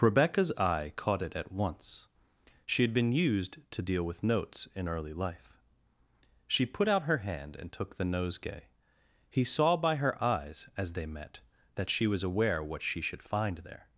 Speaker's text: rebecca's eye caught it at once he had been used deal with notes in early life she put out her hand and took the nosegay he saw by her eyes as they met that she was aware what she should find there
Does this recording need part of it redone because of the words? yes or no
yes